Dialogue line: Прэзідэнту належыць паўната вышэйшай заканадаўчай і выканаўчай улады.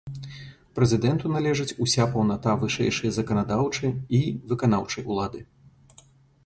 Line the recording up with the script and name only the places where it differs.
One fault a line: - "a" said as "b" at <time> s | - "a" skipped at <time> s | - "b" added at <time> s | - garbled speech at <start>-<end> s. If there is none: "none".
- "уся" added at 1.9 s